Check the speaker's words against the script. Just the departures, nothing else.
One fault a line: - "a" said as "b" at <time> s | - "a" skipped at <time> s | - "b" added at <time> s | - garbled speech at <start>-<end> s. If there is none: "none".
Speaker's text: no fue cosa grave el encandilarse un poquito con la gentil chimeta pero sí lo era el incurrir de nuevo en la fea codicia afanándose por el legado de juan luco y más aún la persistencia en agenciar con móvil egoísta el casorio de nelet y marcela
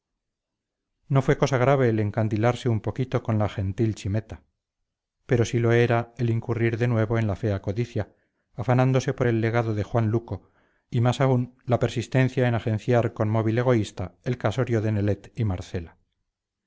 none